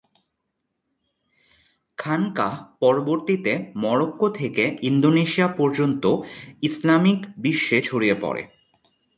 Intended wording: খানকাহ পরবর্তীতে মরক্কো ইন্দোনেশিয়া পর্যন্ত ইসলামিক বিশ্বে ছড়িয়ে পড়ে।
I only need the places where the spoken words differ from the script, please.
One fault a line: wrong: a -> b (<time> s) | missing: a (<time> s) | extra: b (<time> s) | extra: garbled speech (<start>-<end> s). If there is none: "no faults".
extra: থেকে (4.3 s)